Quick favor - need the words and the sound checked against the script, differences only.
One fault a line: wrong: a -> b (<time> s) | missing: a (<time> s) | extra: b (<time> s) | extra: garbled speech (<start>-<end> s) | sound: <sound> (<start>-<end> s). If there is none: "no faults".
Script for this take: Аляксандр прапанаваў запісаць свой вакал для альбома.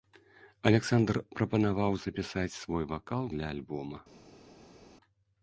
no faults